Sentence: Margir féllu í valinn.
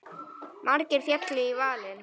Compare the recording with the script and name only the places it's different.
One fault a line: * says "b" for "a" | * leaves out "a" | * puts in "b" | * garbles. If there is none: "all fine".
all fine